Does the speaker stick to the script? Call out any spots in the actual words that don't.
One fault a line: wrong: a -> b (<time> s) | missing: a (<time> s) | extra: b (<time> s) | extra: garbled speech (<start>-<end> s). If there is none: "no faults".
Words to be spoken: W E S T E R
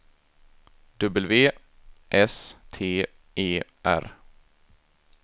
missing: E (1.5 s)